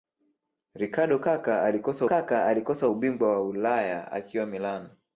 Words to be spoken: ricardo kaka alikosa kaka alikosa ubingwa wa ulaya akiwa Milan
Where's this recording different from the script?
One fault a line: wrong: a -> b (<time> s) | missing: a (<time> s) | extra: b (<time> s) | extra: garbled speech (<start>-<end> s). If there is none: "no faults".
no faults